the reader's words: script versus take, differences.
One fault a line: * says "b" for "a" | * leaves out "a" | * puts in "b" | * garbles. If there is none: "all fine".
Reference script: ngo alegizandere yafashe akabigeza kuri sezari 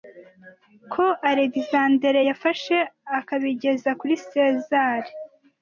* says "ko" for "ngo"